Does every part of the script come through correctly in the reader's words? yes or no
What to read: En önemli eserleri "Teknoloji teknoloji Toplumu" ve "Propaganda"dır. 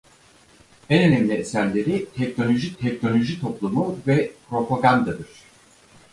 yes